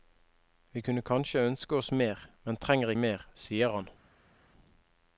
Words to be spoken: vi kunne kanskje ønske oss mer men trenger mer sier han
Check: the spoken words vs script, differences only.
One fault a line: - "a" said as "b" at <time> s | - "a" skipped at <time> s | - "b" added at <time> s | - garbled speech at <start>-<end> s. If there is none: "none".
none